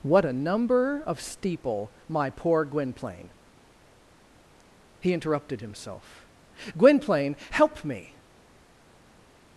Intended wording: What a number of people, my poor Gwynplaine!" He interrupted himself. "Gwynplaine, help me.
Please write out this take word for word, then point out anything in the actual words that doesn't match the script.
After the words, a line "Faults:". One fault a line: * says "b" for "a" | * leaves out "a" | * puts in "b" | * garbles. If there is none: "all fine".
What a number of steeple, my poor Gwynplaine!" He interrupted himself. "Gwynplaine, help me.
Faults:
* says "steeple" for "people"